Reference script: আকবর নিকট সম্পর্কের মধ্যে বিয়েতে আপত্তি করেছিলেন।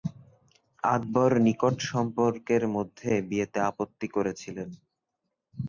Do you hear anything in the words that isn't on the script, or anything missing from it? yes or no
no